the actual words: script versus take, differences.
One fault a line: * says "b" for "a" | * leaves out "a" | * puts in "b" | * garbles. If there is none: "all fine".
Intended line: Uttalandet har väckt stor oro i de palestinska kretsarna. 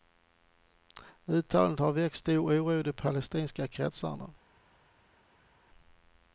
all fine